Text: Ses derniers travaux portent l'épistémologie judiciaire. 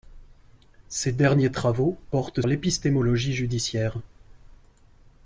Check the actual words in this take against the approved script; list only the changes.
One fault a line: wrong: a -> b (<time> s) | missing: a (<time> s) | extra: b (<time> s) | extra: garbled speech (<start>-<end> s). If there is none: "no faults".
no faults